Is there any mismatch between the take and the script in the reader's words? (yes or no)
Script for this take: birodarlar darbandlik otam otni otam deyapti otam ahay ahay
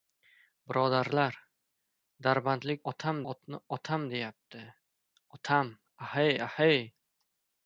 no